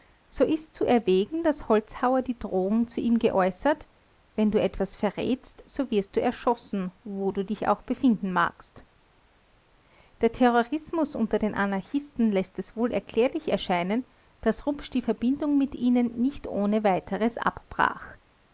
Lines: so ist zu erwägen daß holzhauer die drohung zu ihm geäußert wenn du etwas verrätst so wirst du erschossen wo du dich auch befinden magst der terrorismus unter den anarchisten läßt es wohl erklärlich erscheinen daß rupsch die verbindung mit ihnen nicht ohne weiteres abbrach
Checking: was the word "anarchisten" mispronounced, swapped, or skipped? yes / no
no